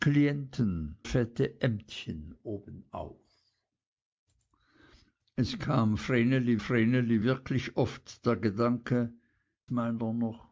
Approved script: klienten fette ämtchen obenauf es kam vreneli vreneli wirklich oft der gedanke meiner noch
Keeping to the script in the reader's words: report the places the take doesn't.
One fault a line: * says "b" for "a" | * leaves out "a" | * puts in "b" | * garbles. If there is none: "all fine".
all fine